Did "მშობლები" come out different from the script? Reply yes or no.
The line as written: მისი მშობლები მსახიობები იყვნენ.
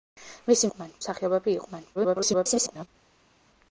yes